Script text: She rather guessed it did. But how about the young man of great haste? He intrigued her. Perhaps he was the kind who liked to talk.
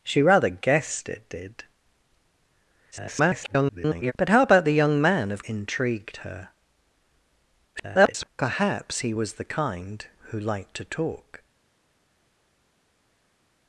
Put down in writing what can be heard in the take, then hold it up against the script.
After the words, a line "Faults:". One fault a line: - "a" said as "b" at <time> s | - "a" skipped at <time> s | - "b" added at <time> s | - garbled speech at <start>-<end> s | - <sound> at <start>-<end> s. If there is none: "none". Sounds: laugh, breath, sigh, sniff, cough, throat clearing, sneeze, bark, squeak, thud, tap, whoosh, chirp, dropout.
She rather guessed it did. [garbled] But how about the young man of intrigued her. [garbled] Perhaps he was the kind who liked to talk.
Faults:
- garbled speech at 2.9-4.1 s
- "great haste He" skipped at 5.4 s
- garbled speech at 7.7-8.3 s